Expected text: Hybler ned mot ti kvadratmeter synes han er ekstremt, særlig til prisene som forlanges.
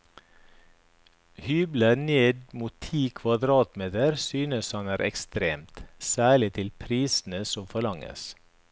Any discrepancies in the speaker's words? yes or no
no